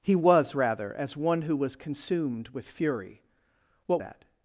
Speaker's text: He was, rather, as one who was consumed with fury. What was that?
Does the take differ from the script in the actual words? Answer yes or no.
yes